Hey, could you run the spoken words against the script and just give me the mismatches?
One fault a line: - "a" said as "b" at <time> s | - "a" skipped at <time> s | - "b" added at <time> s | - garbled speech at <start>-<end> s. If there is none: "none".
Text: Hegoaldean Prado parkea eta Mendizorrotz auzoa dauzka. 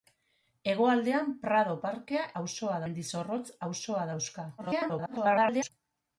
- "eta" said as "auzoa" at 2.4 s
- garbled speech at 4.6-5.7 s